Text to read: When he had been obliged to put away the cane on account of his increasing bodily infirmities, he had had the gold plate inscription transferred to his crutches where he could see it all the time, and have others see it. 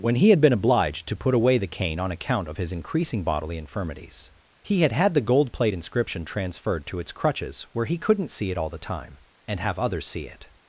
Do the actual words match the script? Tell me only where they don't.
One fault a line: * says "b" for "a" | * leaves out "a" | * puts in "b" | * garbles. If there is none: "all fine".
* says "its" for "his"
* says "couldn't" for "could"